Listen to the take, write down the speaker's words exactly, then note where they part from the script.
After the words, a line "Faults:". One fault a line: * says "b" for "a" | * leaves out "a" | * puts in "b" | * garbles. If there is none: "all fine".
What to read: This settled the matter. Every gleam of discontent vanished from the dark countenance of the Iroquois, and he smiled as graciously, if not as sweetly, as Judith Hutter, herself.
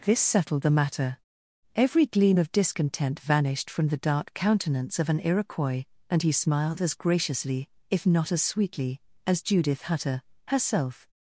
This settled the matter. Every gleam of discontent vanished from the dark countenance of an Iroquois, and he smiled as graciously, if not as sweetly, as Judith Hutter, herself.
Faults:
* says "an" for "the"